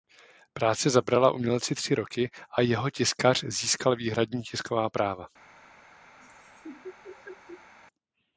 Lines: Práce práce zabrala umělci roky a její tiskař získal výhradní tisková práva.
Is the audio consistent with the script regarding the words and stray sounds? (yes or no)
no